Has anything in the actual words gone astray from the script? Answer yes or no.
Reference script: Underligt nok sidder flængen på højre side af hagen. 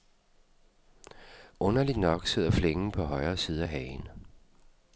no